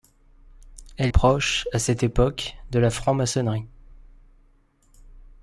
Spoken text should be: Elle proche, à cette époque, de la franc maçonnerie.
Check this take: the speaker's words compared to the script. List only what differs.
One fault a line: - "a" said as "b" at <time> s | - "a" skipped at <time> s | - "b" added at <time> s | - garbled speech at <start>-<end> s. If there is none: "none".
none